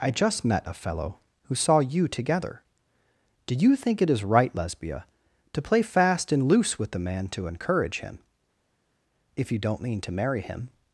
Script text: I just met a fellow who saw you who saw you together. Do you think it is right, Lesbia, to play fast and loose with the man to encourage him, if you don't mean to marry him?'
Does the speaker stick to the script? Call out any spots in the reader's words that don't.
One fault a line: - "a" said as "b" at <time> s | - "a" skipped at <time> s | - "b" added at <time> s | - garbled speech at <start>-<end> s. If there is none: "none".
- "who saw you" skipped at 2.1 s